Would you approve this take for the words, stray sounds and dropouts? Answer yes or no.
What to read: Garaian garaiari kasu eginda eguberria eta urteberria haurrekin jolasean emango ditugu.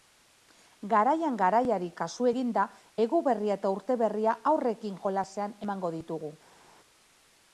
yes